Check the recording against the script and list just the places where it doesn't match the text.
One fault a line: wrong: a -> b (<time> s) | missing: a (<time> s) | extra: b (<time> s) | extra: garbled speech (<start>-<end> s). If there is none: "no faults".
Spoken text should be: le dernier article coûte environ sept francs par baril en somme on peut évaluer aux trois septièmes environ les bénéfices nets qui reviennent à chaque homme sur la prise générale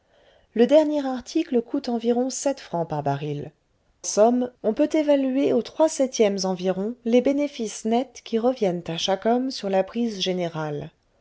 missing: en (3.5 s)